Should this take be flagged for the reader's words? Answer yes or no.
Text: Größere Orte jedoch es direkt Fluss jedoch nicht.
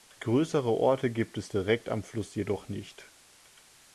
yes